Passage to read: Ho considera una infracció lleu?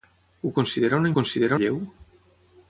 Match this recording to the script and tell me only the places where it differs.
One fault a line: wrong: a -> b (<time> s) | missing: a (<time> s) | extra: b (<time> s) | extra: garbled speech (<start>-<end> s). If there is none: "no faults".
wrong: infracció -> considera (1.1 s)